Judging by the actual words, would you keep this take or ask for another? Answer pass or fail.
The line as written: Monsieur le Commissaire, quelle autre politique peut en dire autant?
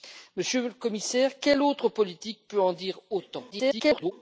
fail